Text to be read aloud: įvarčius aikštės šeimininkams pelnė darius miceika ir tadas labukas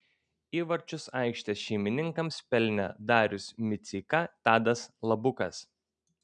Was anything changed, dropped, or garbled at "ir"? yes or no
yes